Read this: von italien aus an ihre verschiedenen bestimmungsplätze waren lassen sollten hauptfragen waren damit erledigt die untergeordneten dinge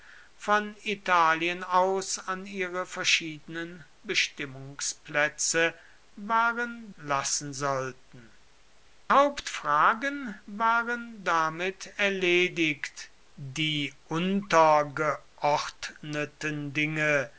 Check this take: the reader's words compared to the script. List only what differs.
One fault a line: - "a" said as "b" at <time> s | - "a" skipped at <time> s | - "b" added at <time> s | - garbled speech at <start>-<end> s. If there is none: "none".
none